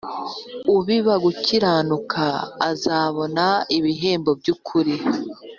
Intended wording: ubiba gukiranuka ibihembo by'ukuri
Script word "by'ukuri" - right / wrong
right